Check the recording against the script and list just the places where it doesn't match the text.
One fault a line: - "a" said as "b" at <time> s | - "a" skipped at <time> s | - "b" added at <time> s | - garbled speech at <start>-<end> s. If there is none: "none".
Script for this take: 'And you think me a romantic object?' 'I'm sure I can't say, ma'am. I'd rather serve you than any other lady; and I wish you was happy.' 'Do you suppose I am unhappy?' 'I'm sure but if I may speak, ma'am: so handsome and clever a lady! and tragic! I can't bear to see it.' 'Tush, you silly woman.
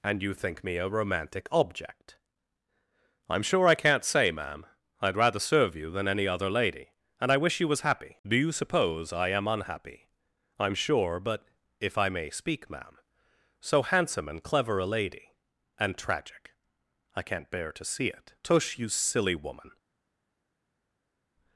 none